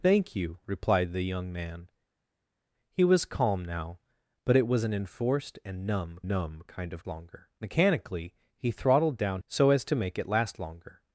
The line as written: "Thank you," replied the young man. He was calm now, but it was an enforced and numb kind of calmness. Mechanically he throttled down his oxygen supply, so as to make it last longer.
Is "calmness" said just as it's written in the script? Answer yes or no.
no